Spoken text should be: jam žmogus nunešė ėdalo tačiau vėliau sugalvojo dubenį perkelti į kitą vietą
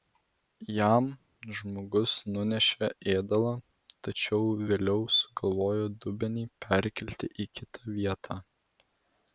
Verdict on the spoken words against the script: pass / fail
pass